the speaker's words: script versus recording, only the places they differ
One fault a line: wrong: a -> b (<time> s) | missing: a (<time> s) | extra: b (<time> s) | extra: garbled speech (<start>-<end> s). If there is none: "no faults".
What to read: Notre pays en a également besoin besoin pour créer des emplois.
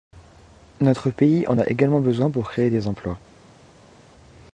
missing: besoin (2.3 s)